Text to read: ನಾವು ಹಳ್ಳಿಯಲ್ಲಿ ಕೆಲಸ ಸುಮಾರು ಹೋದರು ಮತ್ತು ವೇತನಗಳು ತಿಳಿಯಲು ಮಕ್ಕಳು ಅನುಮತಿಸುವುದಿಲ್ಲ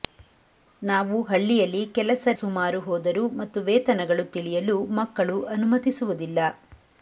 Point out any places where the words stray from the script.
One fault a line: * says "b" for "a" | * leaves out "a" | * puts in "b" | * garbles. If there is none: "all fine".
all fine